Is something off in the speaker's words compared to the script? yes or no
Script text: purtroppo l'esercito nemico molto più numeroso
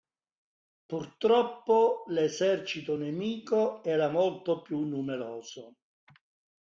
yes